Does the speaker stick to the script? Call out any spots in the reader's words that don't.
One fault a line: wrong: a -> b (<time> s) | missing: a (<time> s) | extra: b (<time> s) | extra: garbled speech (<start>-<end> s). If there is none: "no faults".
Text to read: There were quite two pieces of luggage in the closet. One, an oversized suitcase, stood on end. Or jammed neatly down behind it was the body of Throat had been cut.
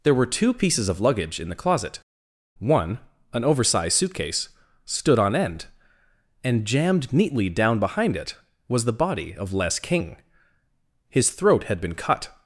missing: quite (0.2 s)
wrong: Or -> And (6.4 s)
extra: Les King His (9.5 s)